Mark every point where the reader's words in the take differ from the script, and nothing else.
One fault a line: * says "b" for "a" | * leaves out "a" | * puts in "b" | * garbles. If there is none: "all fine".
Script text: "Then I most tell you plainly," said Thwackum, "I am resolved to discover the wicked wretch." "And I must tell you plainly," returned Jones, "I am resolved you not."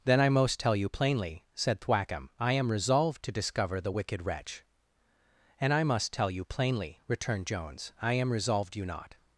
all fine